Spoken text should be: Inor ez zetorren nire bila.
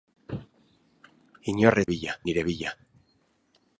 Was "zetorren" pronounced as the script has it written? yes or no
no